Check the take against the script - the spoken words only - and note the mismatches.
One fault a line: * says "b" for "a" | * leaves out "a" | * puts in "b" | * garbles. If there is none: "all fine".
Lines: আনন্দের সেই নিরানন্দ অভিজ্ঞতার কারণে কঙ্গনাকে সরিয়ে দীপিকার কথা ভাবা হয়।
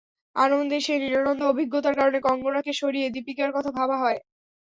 all fine